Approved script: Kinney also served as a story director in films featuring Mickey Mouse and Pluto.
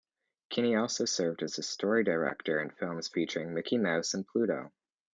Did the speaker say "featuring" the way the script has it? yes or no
yes